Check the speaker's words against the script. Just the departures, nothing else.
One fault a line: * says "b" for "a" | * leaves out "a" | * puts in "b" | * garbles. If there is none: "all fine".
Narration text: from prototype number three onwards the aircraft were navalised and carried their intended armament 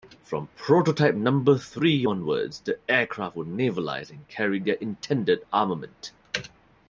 all fine